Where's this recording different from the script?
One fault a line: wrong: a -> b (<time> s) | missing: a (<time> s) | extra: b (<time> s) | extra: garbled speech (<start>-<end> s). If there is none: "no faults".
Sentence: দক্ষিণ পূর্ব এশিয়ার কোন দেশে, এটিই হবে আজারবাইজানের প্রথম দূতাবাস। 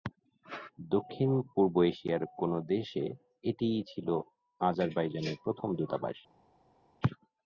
wrong: হবে -> ছিল (3.9 s)